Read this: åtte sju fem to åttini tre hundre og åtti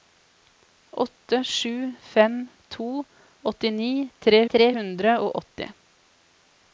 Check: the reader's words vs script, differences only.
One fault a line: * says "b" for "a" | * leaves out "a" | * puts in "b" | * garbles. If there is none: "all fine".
* puts in "tre"